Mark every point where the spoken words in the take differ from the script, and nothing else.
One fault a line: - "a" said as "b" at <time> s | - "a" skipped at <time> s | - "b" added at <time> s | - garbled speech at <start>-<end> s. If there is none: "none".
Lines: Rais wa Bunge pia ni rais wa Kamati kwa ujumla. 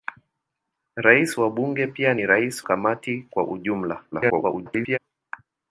- "wa" skipped at 2.6 s
- garbled speech at 4.1-5.0 s